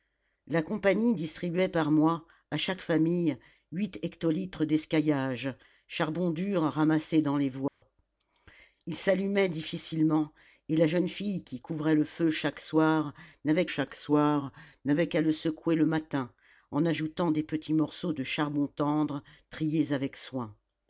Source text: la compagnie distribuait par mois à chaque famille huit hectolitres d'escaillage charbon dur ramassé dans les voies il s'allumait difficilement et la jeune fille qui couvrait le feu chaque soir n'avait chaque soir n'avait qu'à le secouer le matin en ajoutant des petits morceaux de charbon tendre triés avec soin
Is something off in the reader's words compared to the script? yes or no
no